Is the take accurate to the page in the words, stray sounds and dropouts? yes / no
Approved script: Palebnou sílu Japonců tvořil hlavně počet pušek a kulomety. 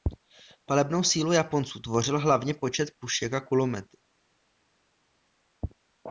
yes